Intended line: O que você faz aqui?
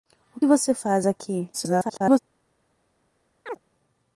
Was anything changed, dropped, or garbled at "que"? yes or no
yes